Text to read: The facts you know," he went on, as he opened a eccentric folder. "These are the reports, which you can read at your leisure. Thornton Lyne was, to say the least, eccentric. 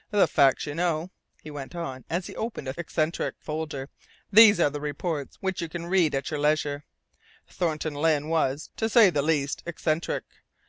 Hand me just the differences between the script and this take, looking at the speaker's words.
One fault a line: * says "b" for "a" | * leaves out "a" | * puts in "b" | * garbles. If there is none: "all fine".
all fine